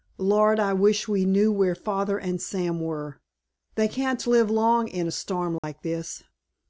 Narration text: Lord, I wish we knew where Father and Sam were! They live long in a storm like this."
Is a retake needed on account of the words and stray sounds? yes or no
yes